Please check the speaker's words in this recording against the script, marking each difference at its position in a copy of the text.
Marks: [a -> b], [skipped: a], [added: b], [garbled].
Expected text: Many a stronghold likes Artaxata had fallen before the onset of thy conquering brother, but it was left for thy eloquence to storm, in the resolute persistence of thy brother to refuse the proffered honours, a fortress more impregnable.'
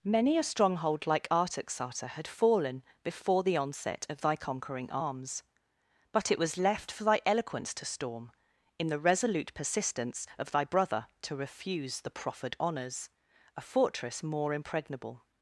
Many a stronghold [likes -> like] Artaxata had fallen before the onset of thy conquering [brother, -> arms] but it was left for thy eloquence to storm, in the resolute persistence of thy brother to refuse the proffered honours, a fortress more impregnable.'